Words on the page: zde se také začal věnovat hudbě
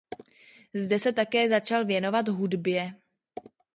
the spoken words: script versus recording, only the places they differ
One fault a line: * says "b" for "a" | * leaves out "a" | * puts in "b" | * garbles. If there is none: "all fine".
all fine